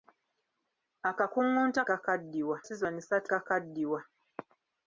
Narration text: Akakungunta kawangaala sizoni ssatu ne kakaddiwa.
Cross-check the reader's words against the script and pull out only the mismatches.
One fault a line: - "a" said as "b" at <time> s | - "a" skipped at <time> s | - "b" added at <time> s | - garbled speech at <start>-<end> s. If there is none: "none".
- "kawangaala" said as "kakaddiwa" at 1.9 s
- "ne" skipped at 3.3 s